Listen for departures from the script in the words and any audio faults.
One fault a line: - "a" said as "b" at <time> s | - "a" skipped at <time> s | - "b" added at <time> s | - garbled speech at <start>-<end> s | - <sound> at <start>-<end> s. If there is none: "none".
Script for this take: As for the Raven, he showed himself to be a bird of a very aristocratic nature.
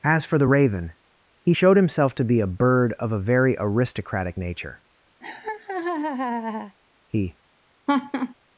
- laugh at 5.2-6.8 s
- "He" added at 7.1 s
- laugh at 7.9-8.3 s